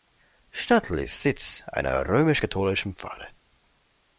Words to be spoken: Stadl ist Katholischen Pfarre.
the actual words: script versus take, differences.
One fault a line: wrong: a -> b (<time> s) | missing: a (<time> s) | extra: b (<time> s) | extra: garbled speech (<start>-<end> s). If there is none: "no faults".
extra: Sitz einer römisch (1.2 s)